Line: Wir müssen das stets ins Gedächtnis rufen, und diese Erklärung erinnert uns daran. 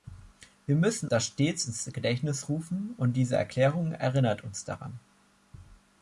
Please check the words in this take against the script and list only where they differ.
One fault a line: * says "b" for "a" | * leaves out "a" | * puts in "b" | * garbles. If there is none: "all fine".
all fine